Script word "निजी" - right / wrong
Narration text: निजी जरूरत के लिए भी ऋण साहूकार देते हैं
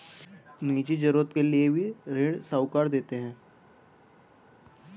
right